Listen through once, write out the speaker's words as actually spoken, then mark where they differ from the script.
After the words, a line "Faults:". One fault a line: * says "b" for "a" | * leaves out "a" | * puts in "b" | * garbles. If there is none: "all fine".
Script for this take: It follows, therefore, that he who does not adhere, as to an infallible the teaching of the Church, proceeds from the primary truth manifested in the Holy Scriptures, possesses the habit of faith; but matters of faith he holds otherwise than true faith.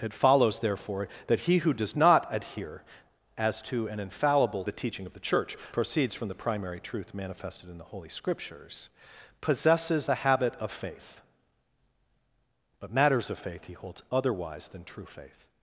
It follows, therefore, that he who does not adhere, as to an infallible the teaching of the Church, proceeds from the primary truth manifested in the Holy Scriptures, possesses the habit of faith; but matters of faith he holds otherwise than true faith.
Faults:
all fine